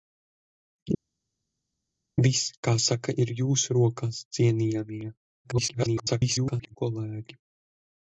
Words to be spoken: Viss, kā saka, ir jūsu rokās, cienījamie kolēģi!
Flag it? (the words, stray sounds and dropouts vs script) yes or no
yes